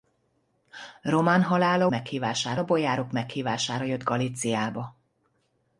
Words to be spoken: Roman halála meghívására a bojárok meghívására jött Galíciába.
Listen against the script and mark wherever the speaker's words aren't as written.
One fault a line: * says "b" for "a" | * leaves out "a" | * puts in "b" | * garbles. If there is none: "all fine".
all fine